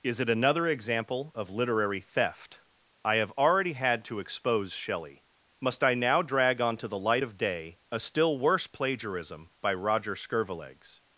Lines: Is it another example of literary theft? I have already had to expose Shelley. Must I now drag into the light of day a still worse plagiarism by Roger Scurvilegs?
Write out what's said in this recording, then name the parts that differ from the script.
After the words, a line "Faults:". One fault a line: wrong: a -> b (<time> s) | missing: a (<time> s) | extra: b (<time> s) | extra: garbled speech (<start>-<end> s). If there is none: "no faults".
Is it another example of literary theft? I have already had to expose Shelley. Must I now drag onto the light of day a still worse plagiarism by Roger Scurvilegs?
Faults:
wrong: into -> onto (6.6 s)